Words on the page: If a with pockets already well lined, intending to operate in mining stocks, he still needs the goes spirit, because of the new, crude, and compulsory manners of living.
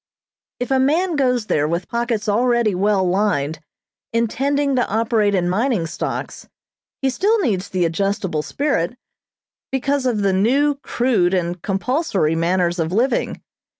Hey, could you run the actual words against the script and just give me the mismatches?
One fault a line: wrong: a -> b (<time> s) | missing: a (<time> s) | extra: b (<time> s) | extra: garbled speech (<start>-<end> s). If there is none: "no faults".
extra: man goes there (0.8 s)
wrong: goes -> adjustable (7.9 s)